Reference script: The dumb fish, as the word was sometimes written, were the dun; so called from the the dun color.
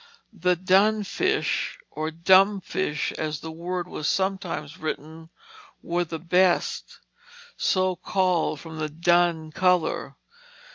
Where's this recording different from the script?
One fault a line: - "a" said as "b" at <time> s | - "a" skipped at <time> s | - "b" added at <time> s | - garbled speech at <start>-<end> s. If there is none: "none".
- "dun fish or" added at 0.6 s
- "dun" said as "best" at 6.2 s
- "the" skipped at 8.9 s